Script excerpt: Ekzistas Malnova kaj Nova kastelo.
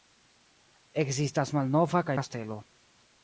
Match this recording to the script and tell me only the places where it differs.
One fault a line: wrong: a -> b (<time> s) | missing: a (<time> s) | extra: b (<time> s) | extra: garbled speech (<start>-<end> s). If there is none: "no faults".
missing: Nova (2.2 s)